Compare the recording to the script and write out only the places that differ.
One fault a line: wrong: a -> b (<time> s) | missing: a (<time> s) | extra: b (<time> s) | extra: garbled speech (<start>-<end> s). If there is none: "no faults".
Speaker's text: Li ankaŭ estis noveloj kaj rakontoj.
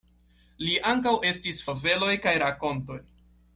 no faults